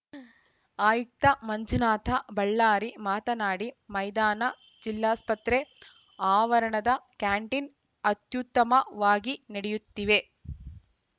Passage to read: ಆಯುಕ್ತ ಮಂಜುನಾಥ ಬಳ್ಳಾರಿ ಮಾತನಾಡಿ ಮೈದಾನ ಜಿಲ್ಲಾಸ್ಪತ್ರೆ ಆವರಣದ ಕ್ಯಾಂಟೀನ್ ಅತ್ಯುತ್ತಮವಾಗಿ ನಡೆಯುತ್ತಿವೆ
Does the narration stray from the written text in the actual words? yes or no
no